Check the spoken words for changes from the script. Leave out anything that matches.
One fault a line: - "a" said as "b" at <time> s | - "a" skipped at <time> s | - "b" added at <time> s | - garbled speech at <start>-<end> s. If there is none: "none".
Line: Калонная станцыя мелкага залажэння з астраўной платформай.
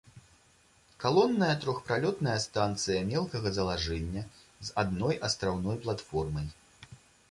- "трохпралётная" added at 1.6 s
- "адной" added at 4.8 s